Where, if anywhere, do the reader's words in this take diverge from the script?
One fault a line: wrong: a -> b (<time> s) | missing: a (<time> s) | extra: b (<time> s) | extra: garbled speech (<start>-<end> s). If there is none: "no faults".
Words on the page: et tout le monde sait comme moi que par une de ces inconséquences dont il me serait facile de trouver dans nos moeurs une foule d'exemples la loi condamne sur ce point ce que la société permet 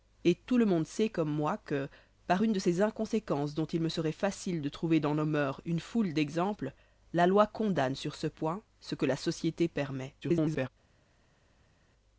extra: garbled speech (10.2-10.7 s)